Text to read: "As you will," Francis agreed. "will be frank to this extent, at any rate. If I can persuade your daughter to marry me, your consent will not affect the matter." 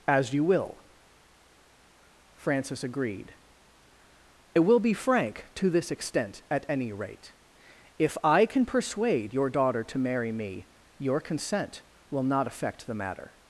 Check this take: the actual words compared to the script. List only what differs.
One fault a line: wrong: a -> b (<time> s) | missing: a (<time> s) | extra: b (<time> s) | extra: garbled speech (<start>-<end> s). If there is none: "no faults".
no faults